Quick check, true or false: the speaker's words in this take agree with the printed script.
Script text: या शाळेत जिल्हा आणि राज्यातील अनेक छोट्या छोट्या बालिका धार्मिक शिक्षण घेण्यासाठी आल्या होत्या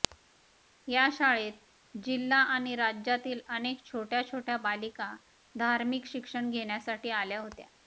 true